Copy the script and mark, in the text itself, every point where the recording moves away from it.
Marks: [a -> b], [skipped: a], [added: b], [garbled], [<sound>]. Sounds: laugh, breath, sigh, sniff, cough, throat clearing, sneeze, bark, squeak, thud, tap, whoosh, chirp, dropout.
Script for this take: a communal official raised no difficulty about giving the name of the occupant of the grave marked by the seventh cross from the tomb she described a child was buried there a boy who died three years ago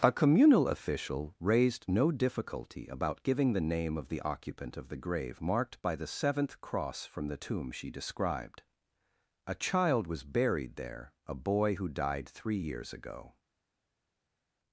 a communal official raised no difficulty about giving the name of the occupant of the grave marked by the seventh cross from the tomb she described a child was buried there a boy who died three years ago